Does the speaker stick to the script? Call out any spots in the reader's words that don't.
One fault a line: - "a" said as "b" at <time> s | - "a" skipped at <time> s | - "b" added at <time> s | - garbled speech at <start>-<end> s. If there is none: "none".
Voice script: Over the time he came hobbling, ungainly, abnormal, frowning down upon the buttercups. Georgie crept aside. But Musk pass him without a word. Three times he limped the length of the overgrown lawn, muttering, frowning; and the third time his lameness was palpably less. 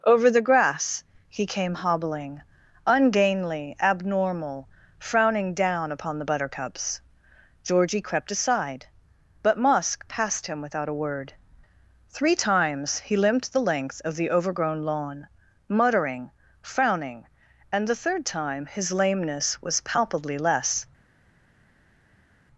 - "time" said as "grass" at 0.4 s
- "pass" said as "passed" at 10.1 s